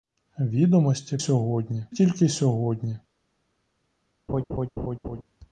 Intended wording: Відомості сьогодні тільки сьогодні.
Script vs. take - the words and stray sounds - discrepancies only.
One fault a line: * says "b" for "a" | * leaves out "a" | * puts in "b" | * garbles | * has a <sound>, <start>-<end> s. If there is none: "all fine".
* has a laugh, 4.3-5.2 s